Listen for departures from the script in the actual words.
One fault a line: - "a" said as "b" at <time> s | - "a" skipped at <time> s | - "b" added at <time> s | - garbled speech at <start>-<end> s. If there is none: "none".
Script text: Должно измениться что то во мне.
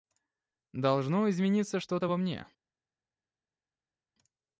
none